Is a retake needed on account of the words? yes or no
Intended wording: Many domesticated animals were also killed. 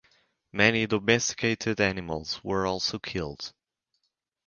no